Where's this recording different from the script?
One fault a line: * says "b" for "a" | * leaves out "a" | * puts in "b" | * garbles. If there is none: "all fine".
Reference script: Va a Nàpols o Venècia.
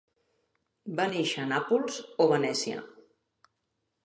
* puts in "néixer"